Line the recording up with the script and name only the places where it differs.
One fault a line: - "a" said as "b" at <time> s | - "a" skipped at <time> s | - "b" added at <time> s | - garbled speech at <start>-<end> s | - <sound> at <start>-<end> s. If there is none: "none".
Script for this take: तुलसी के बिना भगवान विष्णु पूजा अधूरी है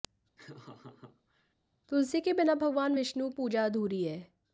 - laugh at 0.4-1.5 s